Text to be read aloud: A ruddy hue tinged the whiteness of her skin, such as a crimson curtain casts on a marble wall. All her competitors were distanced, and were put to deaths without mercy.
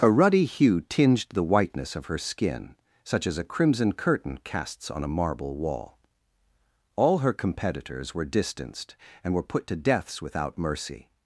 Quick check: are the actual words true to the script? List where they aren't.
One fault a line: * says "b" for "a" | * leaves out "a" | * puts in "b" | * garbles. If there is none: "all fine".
all fine